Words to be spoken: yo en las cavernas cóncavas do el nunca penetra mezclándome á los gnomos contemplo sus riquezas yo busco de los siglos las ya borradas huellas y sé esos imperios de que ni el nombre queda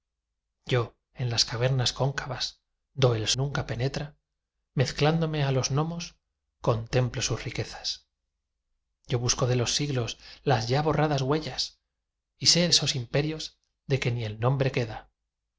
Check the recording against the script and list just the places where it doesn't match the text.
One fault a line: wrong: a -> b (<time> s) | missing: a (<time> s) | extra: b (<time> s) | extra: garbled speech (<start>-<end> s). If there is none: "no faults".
no faults